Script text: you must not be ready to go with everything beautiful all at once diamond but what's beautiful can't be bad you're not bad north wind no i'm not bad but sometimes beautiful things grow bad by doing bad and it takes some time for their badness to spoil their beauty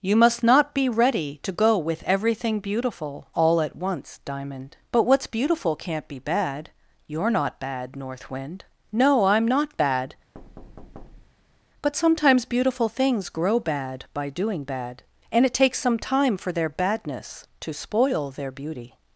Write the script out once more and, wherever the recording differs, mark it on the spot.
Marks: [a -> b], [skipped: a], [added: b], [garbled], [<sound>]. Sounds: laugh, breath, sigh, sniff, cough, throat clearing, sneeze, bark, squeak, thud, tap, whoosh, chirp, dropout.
you must not be ready to go with everything beautiful all at once diamond but what's beautiful can't be bad you're not bad north wind no i'm not bad [thud] but sometimes beautiful things grow bad by doing bad and it takes some time for their badness to spoil their beauty